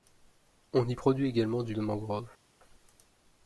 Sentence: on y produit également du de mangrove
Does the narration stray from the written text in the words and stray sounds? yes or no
no